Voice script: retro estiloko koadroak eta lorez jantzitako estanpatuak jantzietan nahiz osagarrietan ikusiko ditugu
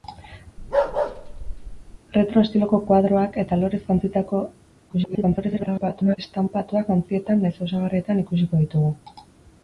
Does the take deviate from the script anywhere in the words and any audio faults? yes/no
yes